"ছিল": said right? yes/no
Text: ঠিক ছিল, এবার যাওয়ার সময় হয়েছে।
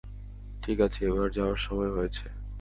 no